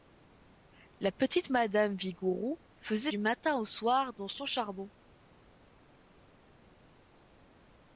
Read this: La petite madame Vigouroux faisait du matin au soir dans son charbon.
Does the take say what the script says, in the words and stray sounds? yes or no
yes